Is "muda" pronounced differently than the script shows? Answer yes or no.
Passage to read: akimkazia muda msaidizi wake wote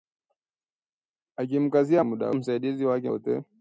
no